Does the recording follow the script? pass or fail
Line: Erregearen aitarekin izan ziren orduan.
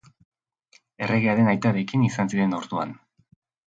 pass